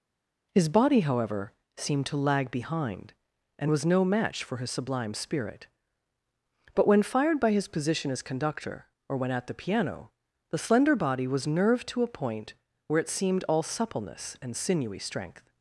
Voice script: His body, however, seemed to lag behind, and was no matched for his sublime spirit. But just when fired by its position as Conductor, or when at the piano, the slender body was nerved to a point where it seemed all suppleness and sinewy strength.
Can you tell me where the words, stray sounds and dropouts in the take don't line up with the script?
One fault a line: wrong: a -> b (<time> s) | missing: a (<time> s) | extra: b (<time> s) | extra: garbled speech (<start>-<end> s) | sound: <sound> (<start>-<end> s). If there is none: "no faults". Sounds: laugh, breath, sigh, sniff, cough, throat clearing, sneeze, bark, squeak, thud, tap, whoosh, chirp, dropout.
wrong: matched -> match (4.0 s)
missing: just (6.9 s)
wrong: its -> his (7.5 s)